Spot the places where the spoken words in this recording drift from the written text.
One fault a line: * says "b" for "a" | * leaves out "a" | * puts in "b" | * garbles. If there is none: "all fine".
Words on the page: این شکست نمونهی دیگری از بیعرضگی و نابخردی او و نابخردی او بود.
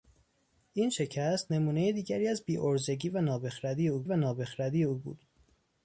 all fine